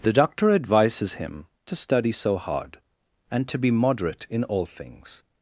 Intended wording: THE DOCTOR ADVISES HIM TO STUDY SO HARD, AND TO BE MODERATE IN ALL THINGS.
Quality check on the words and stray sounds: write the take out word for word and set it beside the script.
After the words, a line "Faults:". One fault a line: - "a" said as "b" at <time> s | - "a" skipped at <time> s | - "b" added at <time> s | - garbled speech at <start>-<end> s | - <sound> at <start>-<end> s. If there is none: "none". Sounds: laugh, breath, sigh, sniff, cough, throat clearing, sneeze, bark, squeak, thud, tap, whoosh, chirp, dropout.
THE DOCTOR ADVISES HIM TO STUDY SO HARD, AND TO BE MODERATE IN ALL THINGS.
Faults:
none